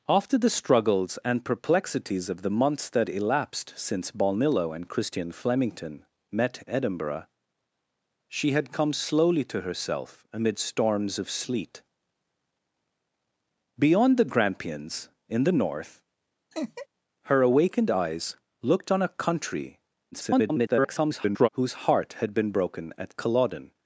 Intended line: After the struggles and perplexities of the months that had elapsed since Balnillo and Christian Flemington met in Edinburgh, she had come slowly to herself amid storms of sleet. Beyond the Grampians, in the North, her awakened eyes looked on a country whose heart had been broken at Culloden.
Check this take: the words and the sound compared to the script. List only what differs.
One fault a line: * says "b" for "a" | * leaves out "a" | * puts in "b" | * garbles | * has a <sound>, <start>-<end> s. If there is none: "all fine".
* leaves out "had"
* leaves out "in"
* has a laugh, 16.5-16.9 s
* garbles